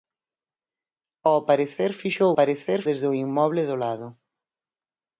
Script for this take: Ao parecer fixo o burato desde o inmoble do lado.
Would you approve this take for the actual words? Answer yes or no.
no